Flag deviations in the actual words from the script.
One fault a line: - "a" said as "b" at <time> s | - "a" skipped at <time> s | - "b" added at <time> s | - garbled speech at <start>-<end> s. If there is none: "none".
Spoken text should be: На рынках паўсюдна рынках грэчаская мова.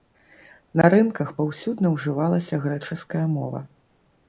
- "рынках" said as "ўжывалася" at 2.0 s